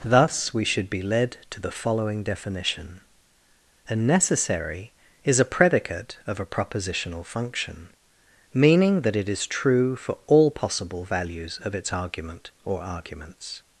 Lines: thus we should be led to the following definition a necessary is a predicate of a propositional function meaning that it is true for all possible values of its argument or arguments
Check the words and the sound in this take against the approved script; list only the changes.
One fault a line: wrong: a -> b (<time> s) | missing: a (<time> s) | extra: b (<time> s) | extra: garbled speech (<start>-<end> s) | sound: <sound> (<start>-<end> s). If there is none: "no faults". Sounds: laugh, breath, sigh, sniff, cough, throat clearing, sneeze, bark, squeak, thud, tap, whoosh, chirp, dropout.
no faults